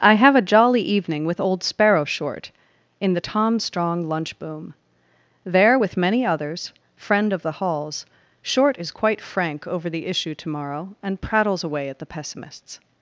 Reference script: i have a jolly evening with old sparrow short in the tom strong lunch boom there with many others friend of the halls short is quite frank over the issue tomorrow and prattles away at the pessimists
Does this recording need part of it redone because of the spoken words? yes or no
no